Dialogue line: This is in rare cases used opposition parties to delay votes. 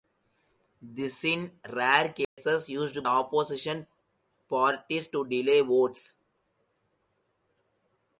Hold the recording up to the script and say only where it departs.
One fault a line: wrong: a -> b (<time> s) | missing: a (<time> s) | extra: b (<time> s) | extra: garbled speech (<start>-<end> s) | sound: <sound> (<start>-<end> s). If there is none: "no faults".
sound: dropout (2.2-2.4 s)